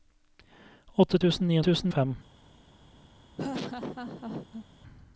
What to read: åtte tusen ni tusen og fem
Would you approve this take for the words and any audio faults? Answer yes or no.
no